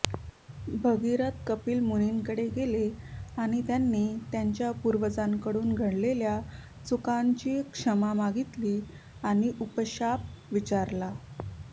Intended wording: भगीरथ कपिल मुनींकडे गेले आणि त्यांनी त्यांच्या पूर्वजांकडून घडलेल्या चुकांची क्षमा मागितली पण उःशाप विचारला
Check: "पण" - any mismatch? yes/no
yes